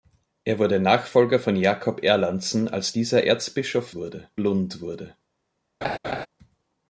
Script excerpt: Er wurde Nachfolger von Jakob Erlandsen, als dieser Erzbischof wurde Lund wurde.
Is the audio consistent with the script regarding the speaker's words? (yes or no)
yes